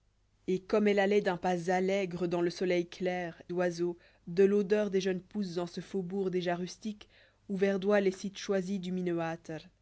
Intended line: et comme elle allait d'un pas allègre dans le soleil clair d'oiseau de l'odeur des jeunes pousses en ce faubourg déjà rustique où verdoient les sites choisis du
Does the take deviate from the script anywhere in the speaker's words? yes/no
no